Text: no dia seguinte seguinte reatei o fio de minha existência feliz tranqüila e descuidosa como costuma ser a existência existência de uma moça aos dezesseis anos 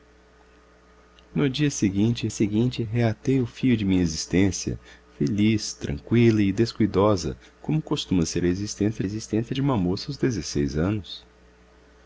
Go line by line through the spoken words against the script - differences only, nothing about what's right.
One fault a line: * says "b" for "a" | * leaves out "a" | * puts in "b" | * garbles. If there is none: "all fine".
all fine